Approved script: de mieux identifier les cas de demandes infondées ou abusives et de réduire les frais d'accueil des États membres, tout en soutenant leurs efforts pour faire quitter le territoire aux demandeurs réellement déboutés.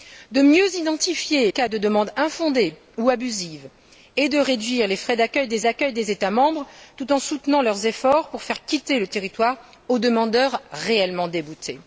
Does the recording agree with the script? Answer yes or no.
no